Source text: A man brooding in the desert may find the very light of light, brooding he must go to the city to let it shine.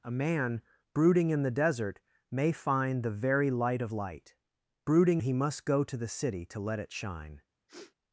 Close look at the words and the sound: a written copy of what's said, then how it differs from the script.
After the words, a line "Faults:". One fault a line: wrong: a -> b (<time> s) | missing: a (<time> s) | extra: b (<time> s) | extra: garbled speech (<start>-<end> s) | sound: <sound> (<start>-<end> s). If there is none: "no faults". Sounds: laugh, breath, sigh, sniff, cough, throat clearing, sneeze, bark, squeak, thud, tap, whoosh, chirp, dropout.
A man brooding in the desert may find the very light of light, brooding he must go to the city to let it shine.
Faults:
sound: sniff (7.7-7.9 s)